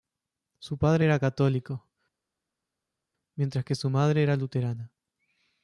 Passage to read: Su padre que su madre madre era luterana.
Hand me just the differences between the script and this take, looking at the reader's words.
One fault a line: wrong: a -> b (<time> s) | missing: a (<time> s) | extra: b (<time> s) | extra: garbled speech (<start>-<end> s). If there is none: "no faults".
extra: era católico mientras (1.0 s)
missing: madre (4.2 s)